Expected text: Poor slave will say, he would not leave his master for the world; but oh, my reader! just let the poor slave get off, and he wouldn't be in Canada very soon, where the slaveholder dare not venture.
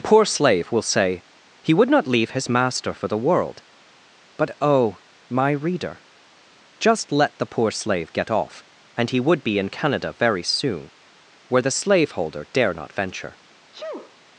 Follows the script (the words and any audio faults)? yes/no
no